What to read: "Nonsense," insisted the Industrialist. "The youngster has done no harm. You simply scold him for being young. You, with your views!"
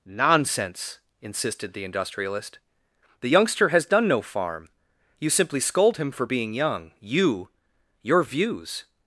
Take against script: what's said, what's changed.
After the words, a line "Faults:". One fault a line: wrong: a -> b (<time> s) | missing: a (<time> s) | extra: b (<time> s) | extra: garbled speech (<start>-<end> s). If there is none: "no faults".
"Nonsense," insisted the Industrialist. "The youngster has done no farm. You simply scold him for being young. You, your views!"
Faults:
wrong: harm -> farm (4.2 s)
missing: with (7.5 s)